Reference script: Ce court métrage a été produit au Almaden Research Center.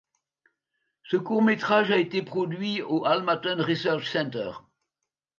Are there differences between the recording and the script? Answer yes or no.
no